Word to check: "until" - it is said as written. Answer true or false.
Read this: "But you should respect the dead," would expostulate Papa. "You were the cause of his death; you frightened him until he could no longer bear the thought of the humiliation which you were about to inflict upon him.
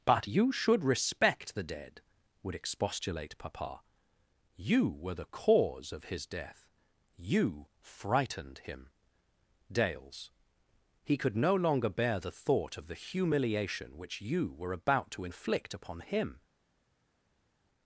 false